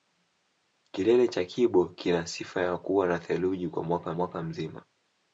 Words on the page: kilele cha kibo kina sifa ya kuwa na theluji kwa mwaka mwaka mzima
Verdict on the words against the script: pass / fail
pass